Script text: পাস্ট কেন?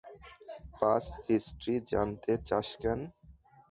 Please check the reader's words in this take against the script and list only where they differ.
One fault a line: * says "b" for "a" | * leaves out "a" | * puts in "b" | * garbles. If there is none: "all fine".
* puts in "হিস্ট্রি জানতে চাস"